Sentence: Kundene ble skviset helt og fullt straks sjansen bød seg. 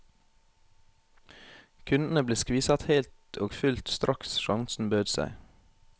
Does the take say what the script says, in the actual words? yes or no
yes